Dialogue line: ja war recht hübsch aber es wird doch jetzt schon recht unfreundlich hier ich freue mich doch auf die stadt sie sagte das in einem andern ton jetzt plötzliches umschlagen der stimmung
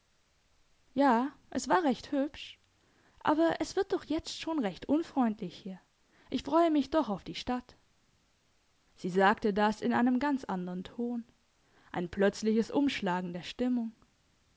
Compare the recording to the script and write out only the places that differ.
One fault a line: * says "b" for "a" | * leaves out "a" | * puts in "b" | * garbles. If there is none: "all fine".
* puts in "es"
* puts in "ganz"
* says "ein" for "jetzt"